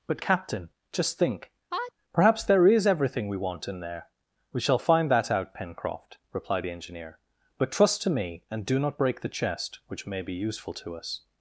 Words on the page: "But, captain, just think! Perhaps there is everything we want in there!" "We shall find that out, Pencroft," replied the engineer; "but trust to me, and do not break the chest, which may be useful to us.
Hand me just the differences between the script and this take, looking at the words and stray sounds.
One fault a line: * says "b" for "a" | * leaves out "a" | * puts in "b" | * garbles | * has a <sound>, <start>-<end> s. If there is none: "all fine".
* has a sneeze, 1.7-1.9 s